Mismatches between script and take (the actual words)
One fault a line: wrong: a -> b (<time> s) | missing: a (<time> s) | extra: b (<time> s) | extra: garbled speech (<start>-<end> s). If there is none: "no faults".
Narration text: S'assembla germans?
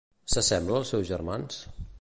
extra: als seus (0.8 s)